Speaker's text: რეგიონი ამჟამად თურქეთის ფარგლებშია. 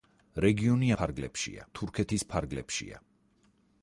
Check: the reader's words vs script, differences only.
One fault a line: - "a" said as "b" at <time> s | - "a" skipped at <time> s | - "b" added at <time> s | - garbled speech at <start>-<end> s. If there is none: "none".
- "ამჟამად" said as "ფარგლებშია" at 1.0 s